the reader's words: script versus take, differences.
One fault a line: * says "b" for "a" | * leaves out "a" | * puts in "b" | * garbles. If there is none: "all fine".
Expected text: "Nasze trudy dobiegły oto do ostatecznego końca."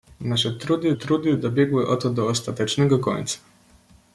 * puts in "trudy"